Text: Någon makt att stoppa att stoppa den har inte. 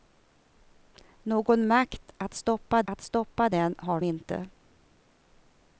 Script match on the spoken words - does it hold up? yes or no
yes